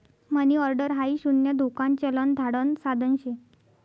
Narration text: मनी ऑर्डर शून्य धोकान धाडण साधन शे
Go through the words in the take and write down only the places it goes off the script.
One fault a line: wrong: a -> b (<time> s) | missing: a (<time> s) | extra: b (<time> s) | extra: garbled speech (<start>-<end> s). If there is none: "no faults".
extra: हाई (0.9 s)
extra: चलन (2.0 s)